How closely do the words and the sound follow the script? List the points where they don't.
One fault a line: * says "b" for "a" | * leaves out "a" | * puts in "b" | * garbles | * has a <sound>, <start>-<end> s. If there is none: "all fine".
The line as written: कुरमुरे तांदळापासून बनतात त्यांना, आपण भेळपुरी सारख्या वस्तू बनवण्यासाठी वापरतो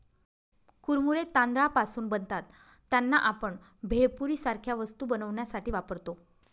all fine